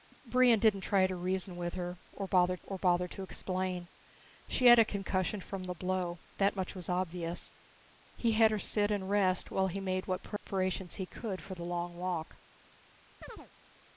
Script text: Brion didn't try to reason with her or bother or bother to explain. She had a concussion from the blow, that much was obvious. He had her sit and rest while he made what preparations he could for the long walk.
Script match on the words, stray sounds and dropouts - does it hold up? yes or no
no